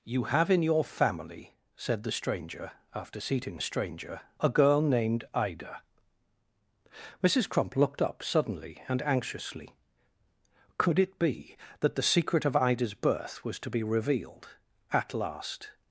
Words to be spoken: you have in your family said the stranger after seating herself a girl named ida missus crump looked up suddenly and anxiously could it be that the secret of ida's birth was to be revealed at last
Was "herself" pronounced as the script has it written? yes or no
no